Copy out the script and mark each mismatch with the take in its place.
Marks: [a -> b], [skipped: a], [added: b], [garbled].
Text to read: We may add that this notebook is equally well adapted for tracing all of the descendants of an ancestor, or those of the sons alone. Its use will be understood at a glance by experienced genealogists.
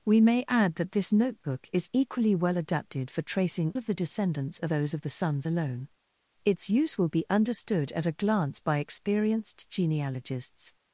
We may add that this notebook is equally well adapted for tracing [skipped: all] of the descendants of [skipped: an ancestor, or] those of the sons alone. Its use will be understood at a glance by experienced genealogists.